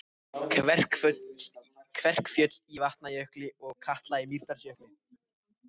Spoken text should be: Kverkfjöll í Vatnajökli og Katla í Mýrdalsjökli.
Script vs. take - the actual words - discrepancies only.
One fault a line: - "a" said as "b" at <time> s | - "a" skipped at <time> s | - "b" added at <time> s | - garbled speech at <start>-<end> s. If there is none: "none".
none